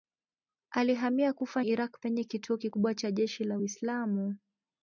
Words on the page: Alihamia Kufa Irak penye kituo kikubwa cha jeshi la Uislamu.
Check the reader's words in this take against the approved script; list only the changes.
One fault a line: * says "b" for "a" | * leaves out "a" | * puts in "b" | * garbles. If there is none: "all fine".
all fine